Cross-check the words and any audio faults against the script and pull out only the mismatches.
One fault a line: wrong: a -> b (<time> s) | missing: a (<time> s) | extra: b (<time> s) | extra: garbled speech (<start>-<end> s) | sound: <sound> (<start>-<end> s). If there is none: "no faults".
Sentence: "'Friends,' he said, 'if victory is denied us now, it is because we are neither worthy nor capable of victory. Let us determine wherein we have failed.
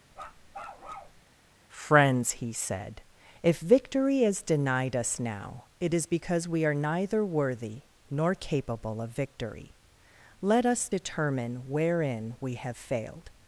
sound: bark (0.1-1.2 s)